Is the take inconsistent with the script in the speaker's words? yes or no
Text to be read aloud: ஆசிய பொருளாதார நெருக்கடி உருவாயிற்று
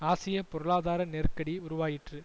no